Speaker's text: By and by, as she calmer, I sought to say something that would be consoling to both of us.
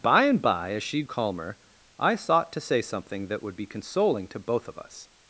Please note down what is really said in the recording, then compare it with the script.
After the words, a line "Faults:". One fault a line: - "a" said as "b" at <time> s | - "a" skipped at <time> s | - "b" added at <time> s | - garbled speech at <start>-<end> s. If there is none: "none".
By and by, as she calmer, I sought to say something that would be consoling to both of us.
Faults:
none